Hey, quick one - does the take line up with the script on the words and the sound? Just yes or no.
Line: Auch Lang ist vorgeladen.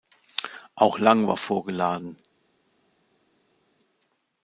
no